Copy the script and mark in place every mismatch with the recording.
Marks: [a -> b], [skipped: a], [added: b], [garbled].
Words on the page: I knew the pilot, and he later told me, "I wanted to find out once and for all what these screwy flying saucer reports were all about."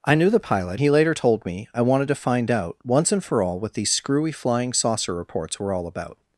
I knew the pilot, [skipped: and] he later told me, "I wanted to find out once and for all what these screwy flying saucer reports were all about."